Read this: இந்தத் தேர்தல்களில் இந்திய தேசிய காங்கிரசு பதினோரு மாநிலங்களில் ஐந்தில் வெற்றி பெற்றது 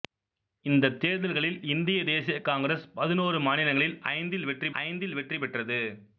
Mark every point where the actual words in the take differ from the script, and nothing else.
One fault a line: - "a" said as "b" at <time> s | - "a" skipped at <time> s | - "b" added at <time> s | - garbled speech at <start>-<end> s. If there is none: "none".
- "ஐந்தில் வெற்றி" added at 4.8 s